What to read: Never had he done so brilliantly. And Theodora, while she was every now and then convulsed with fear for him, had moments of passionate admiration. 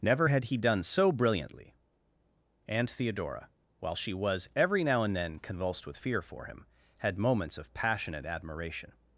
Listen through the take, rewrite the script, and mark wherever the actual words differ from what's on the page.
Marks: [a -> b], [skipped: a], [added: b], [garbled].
Never had he done so brilliantly. And Theodora, while she was every now and then convulsed with fear for him, had moments of passionate admiration.